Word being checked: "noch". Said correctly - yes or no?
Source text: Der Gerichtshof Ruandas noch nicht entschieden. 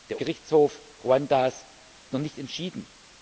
yes